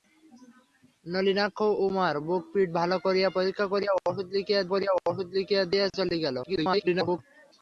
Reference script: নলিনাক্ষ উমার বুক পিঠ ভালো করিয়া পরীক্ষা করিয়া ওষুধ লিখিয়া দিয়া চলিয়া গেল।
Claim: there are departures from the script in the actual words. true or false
true